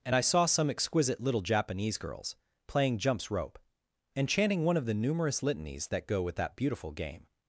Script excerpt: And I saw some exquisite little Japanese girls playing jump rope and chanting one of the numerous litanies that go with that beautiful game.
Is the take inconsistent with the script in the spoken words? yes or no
yes